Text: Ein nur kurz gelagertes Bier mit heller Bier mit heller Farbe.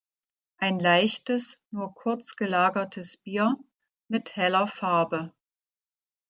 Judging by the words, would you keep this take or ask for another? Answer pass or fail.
fail